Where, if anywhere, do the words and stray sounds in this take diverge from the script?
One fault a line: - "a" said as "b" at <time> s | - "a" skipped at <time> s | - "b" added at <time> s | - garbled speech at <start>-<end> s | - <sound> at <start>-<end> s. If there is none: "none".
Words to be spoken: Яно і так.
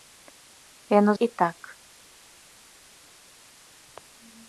none